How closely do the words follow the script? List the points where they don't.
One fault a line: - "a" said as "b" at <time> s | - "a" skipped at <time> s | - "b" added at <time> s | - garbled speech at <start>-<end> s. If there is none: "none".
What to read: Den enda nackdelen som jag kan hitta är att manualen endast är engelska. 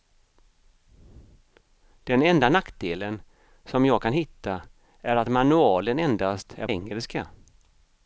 none